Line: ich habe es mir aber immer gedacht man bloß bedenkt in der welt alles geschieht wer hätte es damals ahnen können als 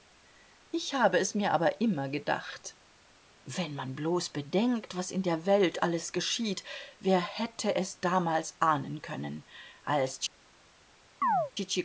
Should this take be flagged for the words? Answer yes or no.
yes